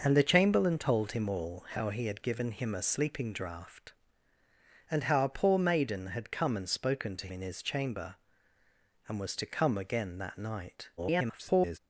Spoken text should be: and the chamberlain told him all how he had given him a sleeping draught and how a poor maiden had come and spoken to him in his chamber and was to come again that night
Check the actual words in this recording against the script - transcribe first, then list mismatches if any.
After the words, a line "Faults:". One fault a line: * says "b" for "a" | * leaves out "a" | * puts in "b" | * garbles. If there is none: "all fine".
and the chamberlain told him all how he had given him a sleeping draught and how a poor maiden had come and spoken to in his chamber and was to come again that night [garbled]
Faults:
* leaves out "him"
* garbles